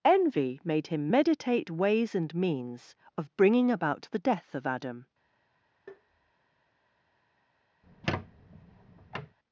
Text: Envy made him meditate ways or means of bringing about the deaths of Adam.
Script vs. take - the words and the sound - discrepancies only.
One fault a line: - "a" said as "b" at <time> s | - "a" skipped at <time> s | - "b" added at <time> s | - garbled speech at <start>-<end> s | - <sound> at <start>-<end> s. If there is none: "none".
- "or" said as "and" at 2.1 s
- "deaths" said as "death" at 4.2 s
- tap at 5.9-6.3 s
- squeak at 7.8-9.4 s